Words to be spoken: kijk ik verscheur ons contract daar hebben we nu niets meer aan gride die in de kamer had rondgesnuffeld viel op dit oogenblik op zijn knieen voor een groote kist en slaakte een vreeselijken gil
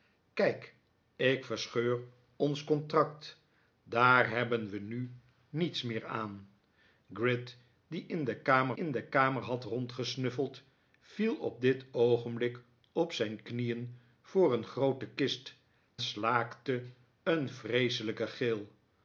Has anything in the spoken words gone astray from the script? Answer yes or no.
yes